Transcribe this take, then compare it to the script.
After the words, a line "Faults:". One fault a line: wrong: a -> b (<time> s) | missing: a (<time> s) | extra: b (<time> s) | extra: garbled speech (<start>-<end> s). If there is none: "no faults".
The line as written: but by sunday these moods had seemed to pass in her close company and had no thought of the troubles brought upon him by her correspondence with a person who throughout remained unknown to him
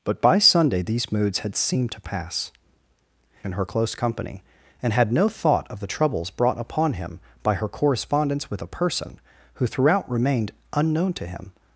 but by sunday these moods had seemed to pass in her close company and had no thought of the troubles brought upon him by her correspondence with a person who throughout remained unknown to him
Faults:
no faults